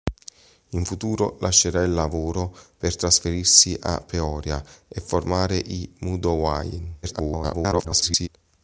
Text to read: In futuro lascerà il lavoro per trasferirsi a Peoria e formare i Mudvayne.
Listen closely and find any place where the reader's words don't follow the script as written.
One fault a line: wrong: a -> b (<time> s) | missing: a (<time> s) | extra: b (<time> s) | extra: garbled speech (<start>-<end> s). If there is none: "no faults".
extra: garbled speech (7.0-8.3 s)